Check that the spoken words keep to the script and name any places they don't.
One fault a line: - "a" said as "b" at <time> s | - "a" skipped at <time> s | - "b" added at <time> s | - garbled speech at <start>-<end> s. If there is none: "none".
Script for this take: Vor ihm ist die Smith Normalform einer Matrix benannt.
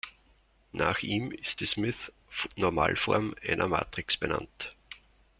- "Vor" said as "Nach" at 0.7 s